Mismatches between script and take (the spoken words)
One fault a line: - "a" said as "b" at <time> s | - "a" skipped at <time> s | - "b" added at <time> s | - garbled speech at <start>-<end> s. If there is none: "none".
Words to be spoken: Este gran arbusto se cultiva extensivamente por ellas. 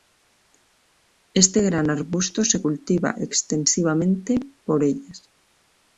none